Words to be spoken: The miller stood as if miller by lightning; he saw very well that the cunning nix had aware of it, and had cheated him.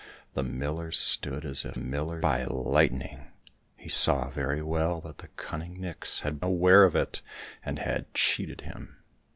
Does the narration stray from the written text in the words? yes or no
no